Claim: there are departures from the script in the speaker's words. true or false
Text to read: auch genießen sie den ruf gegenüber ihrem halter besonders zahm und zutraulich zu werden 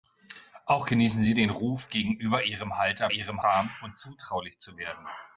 true